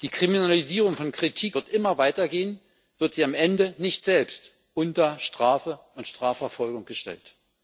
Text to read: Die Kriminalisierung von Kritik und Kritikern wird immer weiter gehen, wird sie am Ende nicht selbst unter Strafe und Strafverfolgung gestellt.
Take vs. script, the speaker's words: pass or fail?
fail